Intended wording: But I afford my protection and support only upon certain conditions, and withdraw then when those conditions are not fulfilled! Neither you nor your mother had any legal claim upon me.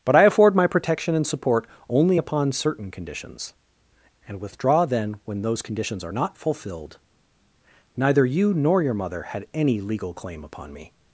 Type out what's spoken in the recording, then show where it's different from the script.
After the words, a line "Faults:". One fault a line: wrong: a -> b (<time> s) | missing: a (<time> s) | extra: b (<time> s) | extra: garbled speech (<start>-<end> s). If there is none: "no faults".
But I afford my protection and support only upon certain conditions, and withdraw then when those conditions are not fulfilled! Neither you nor your mother had any legal claim upon me.
Faults:
no faults